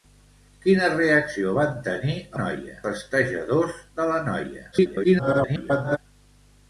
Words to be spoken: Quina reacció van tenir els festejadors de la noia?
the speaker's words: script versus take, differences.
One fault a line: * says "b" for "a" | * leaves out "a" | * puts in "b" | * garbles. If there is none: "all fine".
* says "noia" for "els"
* garbles